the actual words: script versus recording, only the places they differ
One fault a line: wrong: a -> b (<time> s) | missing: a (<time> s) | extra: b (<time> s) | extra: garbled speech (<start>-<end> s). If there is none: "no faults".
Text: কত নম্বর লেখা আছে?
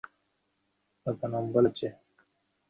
missing: লেখা (1.6 s)